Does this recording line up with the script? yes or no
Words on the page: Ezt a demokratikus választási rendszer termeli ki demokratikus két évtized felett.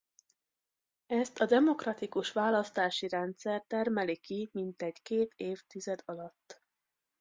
no